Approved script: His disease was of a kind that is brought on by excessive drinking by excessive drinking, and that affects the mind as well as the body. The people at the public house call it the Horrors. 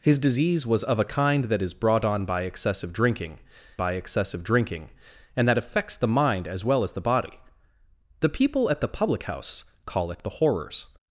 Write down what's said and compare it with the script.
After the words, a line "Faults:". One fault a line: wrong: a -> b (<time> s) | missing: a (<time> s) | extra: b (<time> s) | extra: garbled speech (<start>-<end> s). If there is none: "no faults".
His disease was of a kind that is brought on by excessive drinking by excessive drinking, and that affects the mind as well as the body. The people at the public house call it the Horrors.
Faults:
no faults